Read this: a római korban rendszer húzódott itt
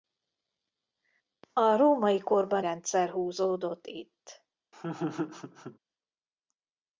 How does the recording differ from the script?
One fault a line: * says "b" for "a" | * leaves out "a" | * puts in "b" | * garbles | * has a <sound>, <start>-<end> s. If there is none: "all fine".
* has a laugh, 4.7-5.8 s